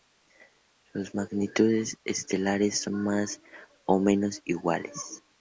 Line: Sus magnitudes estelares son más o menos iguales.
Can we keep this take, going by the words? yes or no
yes